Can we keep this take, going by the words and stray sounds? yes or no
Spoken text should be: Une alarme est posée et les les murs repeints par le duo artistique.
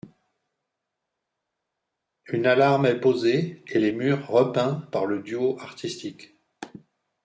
no